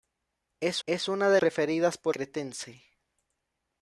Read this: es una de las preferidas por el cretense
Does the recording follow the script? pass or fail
fail